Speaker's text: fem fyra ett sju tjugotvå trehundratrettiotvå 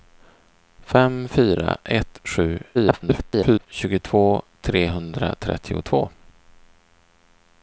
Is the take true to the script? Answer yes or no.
no